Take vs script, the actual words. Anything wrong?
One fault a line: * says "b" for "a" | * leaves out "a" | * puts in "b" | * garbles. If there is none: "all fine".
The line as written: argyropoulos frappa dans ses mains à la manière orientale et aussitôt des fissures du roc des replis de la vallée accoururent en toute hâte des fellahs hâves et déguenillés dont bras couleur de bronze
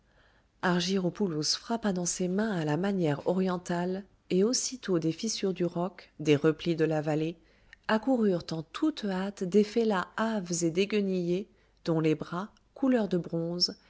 * puts in "les"